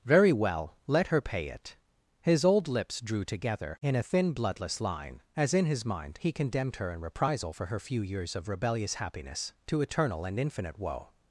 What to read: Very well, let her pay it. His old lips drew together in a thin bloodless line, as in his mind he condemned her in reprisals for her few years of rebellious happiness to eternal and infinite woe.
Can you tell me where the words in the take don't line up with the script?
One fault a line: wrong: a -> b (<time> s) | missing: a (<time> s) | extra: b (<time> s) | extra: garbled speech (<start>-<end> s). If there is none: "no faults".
wrong: reprisals -> reprisal (7.0 s)